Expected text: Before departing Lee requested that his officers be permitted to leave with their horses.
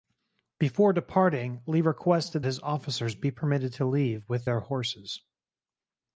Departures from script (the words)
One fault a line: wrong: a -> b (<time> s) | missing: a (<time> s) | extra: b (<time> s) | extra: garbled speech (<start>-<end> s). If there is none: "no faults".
missing: that (2.4 s)